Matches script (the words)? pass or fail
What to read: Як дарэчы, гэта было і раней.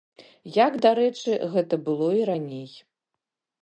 pass